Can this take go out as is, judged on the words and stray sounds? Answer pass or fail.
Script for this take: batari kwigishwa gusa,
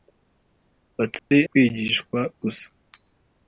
fail